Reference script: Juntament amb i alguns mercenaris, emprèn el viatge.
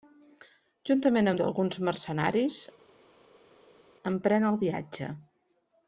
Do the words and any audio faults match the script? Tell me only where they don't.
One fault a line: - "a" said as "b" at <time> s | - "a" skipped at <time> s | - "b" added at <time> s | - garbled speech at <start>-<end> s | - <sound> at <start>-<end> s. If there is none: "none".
none